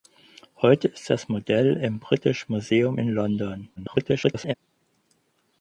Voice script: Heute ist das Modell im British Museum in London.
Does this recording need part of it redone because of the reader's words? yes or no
yes